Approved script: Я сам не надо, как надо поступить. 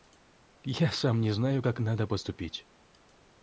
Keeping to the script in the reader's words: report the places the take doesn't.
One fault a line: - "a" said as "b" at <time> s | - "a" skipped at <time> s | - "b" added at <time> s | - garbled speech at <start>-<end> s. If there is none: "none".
- "надо" said as "знаю" at 1.3 s